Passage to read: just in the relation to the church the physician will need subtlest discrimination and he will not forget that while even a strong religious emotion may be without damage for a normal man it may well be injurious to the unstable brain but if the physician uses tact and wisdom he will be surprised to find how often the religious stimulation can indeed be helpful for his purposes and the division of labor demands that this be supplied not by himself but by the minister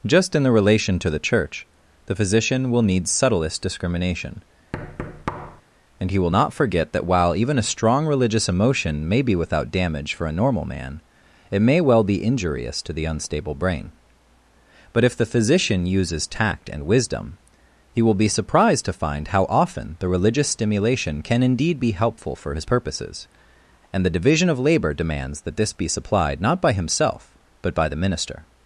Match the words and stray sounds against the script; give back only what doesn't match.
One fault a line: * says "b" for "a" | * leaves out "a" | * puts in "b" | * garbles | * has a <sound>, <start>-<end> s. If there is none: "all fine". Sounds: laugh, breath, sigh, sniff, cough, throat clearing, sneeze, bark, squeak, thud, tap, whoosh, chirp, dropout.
* has a thud, 4.7-5.6 s